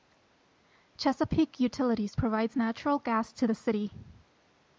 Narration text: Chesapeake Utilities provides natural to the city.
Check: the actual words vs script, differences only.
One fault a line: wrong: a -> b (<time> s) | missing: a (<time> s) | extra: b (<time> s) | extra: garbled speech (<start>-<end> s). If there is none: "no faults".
extra: gas (3.0 s)